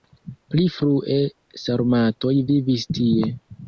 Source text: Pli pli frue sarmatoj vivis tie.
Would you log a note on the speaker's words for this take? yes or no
yes